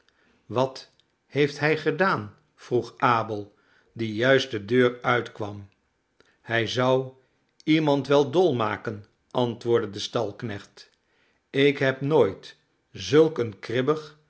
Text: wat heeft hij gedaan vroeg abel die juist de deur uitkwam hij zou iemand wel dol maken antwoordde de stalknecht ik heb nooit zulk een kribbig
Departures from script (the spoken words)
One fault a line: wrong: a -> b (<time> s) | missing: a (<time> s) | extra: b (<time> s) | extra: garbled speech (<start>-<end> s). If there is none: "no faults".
no faults